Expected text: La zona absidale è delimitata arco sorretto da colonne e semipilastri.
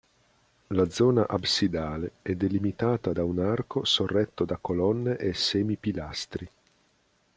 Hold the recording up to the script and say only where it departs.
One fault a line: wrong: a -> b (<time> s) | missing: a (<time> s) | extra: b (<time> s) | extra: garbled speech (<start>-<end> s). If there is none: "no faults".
extra: da un (3.1 s)